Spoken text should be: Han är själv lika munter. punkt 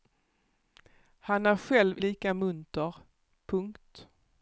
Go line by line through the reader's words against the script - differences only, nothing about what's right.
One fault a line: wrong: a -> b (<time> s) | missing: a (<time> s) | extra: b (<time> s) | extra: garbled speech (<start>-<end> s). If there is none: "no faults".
no faults